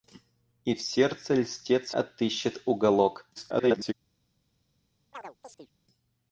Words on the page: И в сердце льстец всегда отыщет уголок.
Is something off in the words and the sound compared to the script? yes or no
yes